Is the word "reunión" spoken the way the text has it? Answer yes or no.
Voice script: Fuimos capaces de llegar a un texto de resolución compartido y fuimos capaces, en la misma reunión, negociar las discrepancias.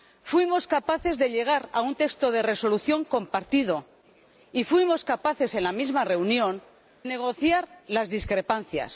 yes